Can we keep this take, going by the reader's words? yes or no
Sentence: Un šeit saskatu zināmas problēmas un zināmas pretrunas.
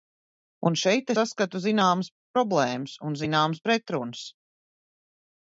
yes